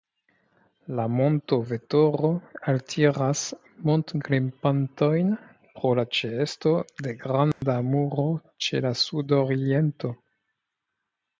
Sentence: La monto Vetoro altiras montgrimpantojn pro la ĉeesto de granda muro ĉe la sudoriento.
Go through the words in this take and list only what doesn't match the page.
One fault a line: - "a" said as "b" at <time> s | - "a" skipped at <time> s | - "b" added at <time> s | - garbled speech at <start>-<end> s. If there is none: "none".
none